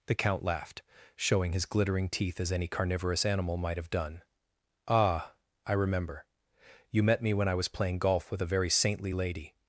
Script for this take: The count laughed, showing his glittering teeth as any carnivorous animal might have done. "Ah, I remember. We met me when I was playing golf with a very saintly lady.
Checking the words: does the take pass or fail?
fail